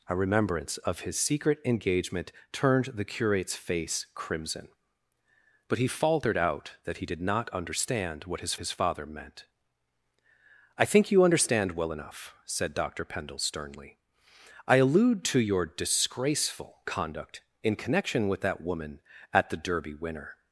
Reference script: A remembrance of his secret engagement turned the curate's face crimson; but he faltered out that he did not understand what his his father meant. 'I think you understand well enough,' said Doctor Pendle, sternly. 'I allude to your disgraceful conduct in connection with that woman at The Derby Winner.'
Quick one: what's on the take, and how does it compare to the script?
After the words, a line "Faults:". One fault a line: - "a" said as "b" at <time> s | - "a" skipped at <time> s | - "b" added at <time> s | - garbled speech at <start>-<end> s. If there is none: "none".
A remembrance of his secret engagement turned the curate's face crimson; but he faltered out that he did not understand what his his father meant. 'I think you understand well enough,' said Doctor Pendle, sternly. 'I allude to your disgraceful conduct in connection with that woman at The Derby Winner.'
Faults:
none